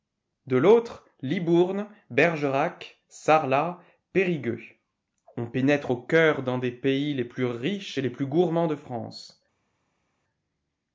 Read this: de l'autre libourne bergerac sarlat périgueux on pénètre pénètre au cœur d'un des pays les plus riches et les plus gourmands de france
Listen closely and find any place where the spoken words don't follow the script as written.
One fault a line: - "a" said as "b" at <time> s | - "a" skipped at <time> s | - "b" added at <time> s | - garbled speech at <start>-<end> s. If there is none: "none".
- "pénètre" skipped at 5.9 s